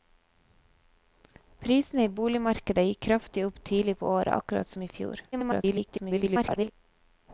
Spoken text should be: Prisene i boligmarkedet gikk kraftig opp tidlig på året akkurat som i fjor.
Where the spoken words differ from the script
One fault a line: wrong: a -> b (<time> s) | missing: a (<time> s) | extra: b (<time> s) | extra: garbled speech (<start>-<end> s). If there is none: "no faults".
extra: garbled speech (5.3-6.7 s)